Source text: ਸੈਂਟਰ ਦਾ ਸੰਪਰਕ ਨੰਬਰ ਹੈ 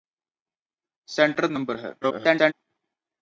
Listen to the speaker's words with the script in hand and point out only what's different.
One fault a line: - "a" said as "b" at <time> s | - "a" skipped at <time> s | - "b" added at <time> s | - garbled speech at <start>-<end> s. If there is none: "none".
- "ਦਾ ਸੰਪਰਕ" skipped at 1.5 s
- garbled speech at 2.0-2.5 s